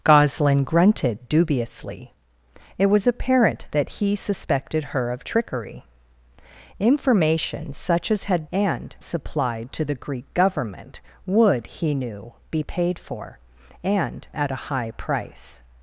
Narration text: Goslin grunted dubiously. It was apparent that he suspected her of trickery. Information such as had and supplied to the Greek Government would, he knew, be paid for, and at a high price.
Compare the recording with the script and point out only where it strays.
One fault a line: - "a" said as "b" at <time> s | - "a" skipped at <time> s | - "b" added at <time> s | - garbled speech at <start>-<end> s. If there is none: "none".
none